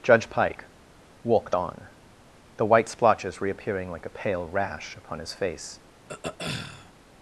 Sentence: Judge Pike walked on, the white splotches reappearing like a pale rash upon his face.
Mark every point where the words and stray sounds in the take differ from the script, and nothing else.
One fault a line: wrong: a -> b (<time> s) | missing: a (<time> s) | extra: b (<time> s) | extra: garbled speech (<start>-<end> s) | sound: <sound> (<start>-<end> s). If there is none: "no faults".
sound: throat clearing (6.1-6.9 s)